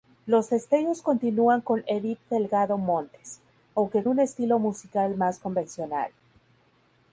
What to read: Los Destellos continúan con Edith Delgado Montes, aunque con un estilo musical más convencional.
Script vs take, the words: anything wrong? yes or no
yes